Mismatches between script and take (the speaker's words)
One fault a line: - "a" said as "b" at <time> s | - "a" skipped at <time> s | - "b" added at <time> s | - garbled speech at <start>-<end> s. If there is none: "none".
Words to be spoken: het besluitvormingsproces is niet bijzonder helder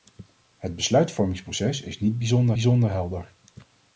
- "bijzonder" added at 2.5 s